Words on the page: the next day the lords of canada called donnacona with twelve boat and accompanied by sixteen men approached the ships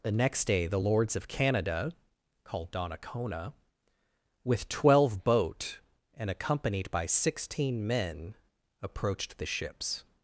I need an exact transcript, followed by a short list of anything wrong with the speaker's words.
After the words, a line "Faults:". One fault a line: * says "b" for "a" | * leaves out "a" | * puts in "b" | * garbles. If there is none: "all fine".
the next day the lords of canada called donnacona with twelve boat and accompanied by sixteen men approached the ships
Faults:
all fine